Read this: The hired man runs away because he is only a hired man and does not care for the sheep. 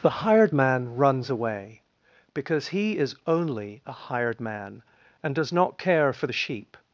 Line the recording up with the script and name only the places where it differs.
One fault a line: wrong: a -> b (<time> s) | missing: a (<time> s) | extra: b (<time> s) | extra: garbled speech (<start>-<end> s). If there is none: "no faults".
no faults